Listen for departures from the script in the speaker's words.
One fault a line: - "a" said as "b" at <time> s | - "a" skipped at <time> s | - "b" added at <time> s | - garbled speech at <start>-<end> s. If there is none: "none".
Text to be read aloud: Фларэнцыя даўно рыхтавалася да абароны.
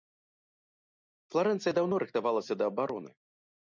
none